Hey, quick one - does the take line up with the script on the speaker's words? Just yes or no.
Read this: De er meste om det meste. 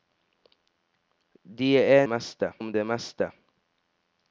yes